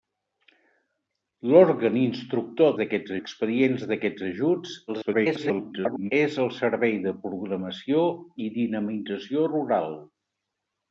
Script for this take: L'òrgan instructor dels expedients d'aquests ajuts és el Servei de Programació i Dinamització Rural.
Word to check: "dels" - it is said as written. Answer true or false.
false